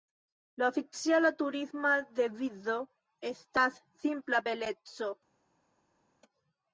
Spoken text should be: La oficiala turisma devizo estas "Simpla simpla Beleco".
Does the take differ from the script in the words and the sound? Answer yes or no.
yes